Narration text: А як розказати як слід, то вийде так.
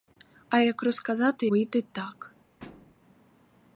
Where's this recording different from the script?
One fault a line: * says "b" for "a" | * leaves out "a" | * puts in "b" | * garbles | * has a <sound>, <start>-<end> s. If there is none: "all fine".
* leaves out "як слід то"
* has a thud, 2.6-2.9 s